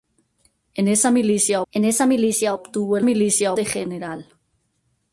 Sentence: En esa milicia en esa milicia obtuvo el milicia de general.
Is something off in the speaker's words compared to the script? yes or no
no